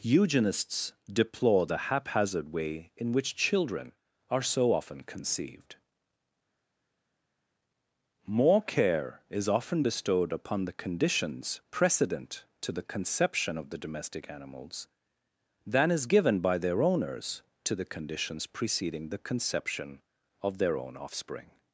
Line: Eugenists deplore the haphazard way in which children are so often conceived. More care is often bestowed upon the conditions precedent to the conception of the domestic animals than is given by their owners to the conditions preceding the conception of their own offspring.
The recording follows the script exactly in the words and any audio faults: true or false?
true